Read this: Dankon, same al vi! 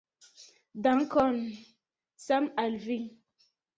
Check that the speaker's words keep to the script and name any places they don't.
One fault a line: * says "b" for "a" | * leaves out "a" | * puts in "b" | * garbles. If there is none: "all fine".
all fine